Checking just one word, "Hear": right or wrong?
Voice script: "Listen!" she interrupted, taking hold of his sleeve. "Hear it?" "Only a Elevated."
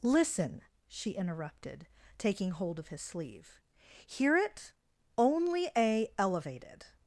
right